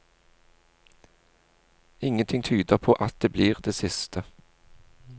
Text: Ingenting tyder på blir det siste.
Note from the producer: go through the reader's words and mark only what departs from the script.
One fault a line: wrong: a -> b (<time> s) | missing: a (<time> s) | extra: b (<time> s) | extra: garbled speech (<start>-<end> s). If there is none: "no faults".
extra: at det (2.9 s)